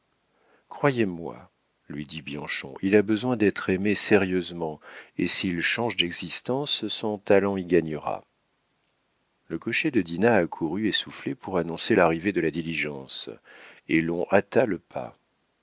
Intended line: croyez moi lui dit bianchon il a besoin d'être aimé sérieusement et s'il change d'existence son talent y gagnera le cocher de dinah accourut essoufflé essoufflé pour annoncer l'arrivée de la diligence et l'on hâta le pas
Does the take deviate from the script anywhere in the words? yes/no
yes